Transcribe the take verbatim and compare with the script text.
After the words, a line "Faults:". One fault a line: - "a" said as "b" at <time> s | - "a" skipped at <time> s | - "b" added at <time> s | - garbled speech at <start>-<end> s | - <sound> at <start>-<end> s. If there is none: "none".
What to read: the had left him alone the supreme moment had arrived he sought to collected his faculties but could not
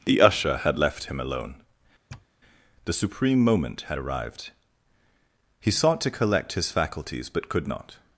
the usher had left him alone the supreme moment had arrived he sought to collect his faculties but could not
Faults:
- "usher" added at 0.2 s
- sniff at 2.1-2.3 s
- "collected" said as "collect" at 6.1 s